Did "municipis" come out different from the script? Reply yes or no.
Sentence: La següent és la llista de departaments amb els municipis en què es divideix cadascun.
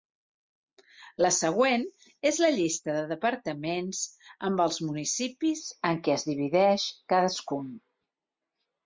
no